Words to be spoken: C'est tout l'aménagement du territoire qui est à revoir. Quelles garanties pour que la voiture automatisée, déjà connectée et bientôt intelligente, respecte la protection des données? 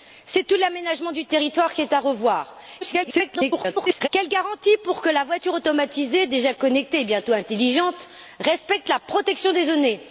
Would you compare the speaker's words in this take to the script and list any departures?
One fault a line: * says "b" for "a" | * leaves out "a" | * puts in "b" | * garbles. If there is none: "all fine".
* garbles